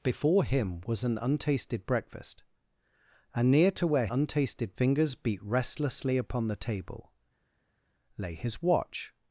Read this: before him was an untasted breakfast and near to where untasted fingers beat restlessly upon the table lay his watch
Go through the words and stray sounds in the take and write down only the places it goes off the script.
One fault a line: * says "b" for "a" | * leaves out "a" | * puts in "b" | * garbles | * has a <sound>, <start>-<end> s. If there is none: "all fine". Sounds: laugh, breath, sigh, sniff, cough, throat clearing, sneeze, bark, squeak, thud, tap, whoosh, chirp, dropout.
all fine